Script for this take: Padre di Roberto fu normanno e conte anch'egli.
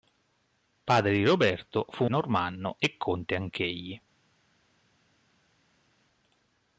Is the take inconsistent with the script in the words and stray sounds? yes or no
no